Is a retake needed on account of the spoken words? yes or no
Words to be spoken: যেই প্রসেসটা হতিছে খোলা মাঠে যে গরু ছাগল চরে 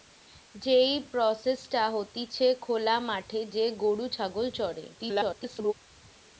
yes